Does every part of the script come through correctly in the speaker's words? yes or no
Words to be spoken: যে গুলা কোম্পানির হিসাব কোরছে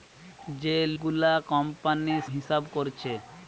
yes